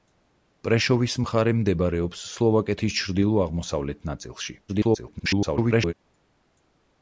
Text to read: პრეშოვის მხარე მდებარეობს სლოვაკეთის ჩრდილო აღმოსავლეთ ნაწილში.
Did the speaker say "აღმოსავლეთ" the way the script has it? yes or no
yes